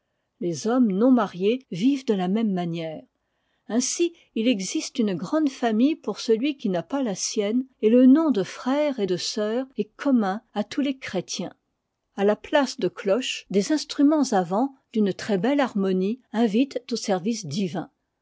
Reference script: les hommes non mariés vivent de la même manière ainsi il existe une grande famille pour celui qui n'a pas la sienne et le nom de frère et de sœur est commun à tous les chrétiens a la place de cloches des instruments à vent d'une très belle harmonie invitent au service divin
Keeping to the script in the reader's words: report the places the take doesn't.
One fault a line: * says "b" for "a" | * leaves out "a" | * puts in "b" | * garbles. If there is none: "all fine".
all fine